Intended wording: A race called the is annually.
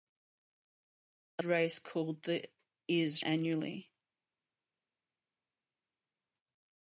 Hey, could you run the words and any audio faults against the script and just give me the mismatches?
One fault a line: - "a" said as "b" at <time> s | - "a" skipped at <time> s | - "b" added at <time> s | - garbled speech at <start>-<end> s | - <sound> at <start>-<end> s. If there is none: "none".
none